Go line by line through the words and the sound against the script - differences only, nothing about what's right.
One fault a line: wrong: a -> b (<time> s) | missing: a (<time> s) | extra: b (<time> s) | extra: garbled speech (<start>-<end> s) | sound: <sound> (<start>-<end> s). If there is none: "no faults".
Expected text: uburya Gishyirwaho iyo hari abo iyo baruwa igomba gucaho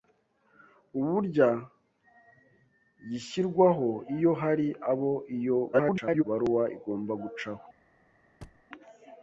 extra: garbled speech (5.7-6.2 s)
sound: thud (8.4-8.7 s)